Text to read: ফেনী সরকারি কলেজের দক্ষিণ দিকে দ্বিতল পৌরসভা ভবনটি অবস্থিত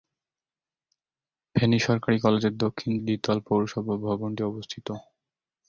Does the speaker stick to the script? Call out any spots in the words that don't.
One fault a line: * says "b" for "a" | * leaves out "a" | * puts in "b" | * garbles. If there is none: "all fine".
* leaves out "দিকে"